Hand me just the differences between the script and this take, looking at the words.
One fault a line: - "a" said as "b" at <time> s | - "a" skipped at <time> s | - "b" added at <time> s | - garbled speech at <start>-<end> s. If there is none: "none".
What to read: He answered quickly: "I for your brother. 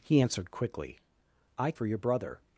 none